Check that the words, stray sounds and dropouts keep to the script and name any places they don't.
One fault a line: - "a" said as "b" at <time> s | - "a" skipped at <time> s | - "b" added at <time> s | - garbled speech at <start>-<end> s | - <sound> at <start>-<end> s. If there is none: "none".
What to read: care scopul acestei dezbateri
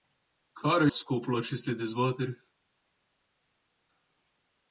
none